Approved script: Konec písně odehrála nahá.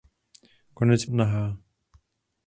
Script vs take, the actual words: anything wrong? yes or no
yes